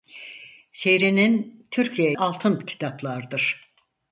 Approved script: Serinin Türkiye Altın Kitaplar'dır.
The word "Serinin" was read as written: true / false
true